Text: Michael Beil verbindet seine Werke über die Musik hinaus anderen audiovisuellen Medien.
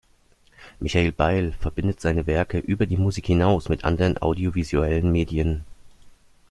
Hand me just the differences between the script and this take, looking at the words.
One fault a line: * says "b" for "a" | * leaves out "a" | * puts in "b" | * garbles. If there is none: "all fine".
* puts in "mit"